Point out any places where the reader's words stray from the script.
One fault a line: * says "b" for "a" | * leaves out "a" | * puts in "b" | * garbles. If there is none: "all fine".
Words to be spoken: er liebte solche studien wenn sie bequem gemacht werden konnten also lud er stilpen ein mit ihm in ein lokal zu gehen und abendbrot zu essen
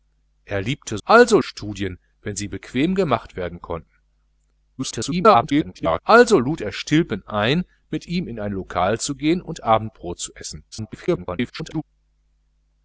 * says "also" for "solche"
* garbles
* garbles